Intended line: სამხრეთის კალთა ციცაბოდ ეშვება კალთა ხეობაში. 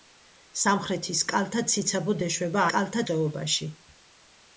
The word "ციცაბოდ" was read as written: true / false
true